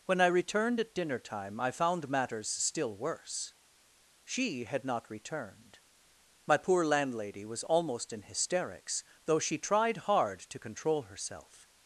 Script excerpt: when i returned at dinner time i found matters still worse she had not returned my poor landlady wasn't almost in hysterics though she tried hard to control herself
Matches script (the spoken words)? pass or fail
fail